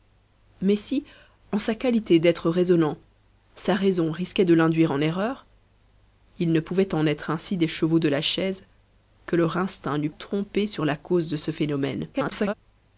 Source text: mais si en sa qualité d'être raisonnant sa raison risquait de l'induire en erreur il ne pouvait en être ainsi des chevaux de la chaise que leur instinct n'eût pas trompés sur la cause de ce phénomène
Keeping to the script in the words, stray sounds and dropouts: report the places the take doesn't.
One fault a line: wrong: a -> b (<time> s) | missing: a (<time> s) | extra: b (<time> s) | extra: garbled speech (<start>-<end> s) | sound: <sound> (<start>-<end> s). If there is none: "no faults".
missing: pas (10.1 s)
extra: garbled speech (12.1-12.5 s)